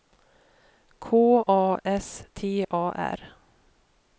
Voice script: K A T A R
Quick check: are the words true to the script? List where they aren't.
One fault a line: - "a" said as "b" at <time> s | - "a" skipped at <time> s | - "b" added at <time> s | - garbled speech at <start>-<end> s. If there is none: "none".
- "S" added at 1.8 s